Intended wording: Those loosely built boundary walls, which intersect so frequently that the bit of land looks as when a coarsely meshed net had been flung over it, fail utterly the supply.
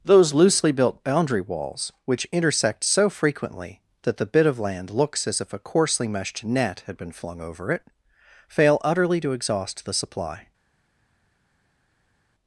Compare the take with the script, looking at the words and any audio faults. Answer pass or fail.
fail